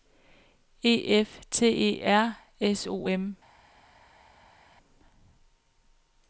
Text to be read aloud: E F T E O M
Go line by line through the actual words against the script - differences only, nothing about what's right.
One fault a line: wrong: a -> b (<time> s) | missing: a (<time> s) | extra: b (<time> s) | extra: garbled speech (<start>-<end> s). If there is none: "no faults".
extra: R S (2.0 s)